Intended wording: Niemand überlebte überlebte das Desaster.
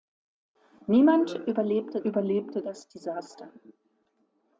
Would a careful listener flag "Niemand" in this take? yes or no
no